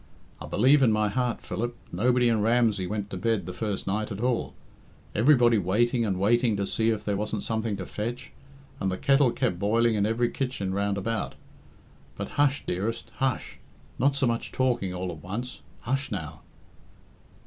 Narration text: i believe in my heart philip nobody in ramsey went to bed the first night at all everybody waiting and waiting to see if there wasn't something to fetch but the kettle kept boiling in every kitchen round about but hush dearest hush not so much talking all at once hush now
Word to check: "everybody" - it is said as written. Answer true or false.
true